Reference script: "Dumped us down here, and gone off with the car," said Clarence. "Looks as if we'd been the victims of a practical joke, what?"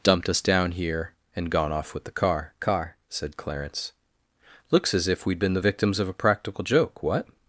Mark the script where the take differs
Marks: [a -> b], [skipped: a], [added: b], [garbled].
"Dumped us down here, and gone off with the car," [added: car] said Clarence. "Looks as if we'd been the victims of a practical joke, what?"